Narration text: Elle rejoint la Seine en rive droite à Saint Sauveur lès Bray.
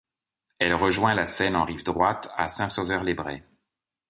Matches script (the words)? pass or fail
pass